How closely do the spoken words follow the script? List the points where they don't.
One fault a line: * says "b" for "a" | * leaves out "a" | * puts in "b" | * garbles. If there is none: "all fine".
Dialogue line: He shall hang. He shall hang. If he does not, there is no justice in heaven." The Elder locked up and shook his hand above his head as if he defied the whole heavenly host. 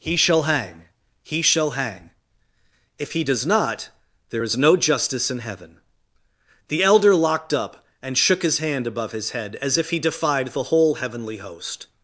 all fine